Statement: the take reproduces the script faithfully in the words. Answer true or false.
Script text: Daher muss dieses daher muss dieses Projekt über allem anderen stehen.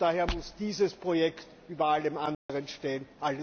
false